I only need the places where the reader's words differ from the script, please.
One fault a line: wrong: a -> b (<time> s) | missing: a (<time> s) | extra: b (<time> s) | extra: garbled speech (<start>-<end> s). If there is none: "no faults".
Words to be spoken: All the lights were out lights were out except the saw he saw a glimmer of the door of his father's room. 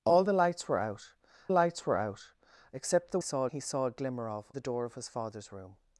no faults